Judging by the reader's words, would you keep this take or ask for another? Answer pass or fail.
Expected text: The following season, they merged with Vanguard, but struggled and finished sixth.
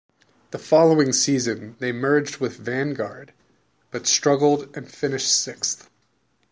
pass